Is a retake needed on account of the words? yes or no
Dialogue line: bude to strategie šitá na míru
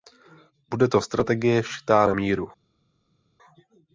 no